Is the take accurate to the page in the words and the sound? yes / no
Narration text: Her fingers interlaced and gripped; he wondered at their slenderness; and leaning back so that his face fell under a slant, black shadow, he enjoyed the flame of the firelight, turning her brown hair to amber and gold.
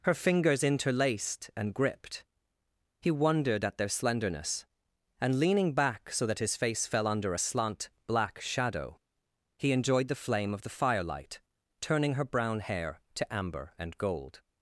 yes